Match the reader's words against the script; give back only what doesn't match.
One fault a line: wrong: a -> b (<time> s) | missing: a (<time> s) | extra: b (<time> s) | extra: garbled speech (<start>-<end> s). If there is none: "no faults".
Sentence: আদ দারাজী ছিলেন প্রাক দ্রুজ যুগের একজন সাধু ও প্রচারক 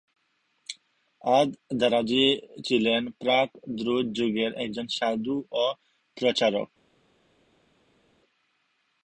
no faults